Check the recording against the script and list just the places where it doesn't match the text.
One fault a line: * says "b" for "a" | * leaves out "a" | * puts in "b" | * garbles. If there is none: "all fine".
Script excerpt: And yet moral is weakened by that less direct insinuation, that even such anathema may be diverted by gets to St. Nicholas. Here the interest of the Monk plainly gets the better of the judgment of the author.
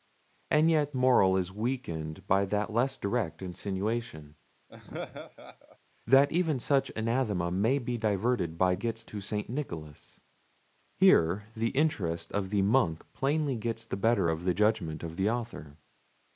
all fine